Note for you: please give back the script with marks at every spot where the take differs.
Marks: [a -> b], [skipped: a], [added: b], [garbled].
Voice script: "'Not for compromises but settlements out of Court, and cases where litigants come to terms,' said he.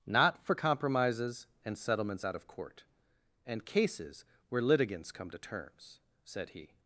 "'Not for compromises [but -> and] settlements out of Court, and cases where litigants come to terms,' said he.